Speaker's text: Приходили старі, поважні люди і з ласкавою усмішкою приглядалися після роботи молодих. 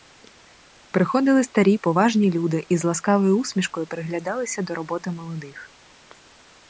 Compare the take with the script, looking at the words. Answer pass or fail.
fail